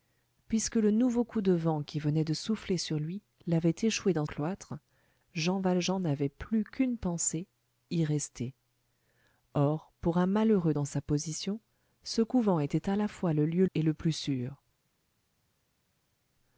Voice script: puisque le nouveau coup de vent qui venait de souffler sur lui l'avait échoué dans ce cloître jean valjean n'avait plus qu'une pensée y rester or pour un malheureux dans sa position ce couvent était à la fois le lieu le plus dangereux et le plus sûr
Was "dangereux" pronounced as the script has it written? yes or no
no